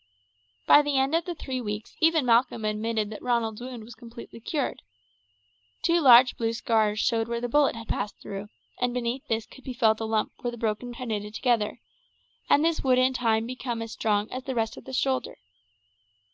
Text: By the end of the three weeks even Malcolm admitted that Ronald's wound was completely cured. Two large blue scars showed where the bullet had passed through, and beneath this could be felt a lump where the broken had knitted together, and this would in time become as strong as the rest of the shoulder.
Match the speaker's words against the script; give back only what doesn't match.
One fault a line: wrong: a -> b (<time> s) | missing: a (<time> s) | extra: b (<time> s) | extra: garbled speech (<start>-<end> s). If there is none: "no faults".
no faults